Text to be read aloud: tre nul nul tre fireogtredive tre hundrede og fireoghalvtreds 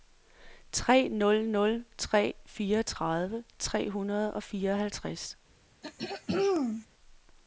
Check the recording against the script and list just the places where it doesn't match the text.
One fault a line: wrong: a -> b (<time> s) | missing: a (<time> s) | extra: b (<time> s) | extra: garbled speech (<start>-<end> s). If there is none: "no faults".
no faults